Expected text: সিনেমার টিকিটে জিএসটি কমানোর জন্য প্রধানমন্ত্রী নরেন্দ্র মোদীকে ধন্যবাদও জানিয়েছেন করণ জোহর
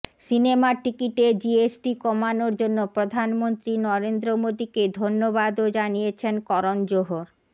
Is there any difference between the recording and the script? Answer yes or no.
no